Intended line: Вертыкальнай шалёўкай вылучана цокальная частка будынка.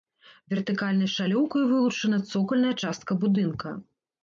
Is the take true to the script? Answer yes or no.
yes